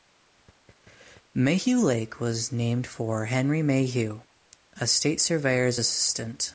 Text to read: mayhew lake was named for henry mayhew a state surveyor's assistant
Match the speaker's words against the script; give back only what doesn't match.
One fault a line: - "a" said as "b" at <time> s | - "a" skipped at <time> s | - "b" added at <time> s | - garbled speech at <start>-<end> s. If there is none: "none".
none